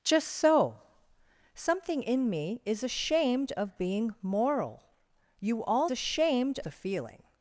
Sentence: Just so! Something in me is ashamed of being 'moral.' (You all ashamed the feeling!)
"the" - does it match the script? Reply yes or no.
yes